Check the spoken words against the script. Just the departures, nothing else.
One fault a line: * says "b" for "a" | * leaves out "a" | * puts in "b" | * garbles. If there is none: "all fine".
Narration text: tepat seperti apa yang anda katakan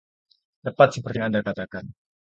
* leaves out "apa"